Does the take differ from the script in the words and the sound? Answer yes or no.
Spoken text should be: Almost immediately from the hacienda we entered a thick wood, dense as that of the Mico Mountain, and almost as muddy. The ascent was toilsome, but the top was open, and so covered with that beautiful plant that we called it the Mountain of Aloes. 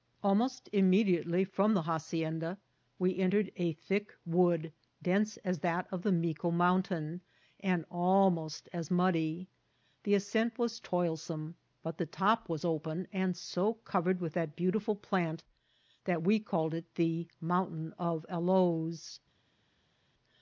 no